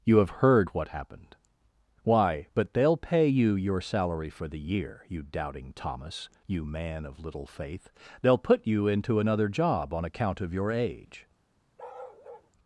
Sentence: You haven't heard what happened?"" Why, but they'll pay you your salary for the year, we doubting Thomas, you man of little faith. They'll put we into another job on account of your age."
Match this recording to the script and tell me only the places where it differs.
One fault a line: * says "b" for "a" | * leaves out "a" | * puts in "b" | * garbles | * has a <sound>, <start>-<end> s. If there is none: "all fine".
* says "have" for "haven't"
* says "you" for "we"
* says "you" for "we"
* has a bark, 11.8-12.5 s